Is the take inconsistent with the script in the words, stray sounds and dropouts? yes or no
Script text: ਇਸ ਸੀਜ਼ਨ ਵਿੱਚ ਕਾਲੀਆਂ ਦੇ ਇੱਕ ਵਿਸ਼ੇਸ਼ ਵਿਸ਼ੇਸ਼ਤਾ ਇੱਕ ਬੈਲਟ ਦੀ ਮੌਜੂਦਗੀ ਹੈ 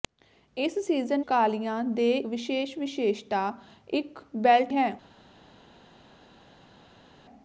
yes